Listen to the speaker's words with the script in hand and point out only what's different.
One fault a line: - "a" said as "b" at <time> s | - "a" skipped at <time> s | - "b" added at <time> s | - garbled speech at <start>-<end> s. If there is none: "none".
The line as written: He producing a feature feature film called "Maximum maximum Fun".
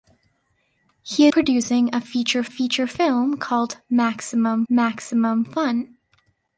none